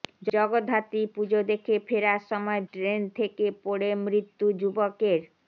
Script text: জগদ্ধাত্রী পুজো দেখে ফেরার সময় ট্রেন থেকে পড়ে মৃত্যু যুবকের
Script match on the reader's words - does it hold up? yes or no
yes